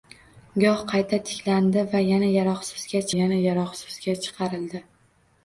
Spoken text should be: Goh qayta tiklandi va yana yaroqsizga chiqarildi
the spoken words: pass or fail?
fail